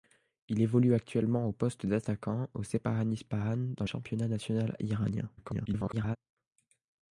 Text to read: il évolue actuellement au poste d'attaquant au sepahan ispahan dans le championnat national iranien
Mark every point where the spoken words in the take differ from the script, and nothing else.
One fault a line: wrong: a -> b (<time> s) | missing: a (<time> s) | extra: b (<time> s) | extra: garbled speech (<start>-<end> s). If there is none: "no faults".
missing: le (3.9 s)
extra: garbled speech (5.4-6.2 s)